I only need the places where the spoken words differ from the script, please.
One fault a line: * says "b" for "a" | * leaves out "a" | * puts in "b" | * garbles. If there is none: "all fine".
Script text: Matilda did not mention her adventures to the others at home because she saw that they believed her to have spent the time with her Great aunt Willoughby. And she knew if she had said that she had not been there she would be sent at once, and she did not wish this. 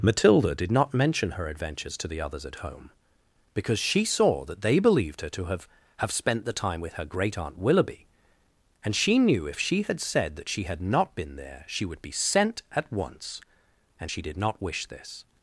* puts in "have"